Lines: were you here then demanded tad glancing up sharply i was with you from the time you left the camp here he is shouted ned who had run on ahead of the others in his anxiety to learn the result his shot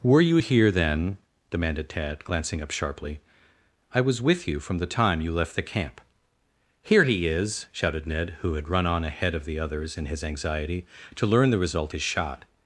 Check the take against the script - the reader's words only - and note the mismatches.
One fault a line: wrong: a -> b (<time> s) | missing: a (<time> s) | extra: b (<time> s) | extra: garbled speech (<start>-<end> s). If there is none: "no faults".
no faults